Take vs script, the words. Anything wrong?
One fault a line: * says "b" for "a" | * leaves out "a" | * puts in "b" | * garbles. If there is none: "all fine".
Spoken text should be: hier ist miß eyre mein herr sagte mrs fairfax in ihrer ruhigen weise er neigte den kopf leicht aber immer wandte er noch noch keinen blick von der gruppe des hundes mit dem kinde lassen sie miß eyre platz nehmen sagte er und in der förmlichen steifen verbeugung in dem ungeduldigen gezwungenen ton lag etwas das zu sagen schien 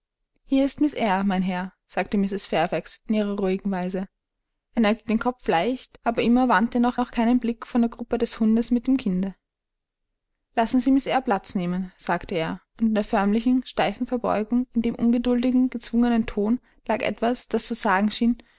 all fine